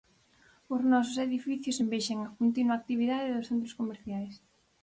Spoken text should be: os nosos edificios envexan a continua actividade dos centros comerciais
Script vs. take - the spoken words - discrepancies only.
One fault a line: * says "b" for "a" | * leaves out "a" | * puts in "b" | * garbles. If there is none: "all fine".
all fine